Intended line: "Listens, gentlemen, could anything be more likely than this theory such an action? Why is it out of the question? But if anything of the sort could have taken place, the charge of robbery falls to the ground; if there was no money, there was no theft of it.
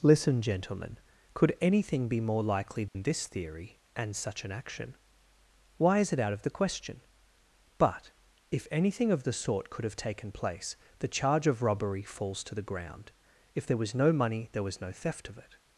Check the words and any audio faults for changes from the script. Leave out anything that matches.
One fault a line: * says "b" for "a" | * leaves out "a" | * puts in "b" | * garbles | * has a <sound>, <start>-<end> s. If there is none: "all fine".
* says "Listen" for "Listens"
* has a dropout, 2.9-3.0 s
* puts in "and"